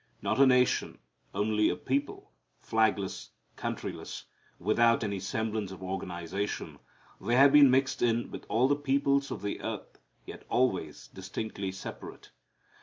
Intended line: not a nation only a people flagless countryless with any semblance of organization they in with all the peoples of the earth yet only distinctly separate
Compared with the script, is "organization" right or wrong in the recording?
right